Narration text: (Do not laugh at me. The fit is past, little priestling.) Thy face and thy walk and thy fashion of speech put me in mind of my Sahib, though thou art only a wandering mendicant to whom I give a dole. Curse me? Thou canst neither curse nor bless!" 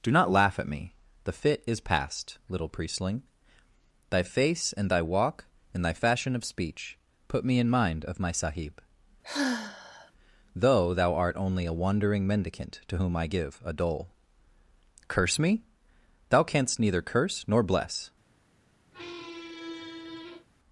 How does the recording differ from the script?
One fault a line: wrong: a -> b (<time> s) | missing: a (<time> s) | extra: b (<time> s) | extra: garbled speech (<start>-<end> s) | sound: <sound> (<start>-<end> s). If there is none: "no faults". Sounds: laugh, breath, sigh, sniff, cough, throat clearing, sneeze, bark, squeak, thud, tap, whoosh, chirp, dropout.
sound: sigh (9.2-10.1 s)
sound: squeak (18.9-20.5 s)